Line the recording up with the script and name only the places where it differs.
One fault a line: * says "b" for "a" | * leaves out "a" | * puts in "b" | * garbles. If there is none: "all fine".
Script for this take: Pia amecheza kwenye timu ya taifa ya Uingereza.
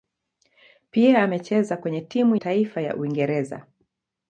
* leaves out "ya"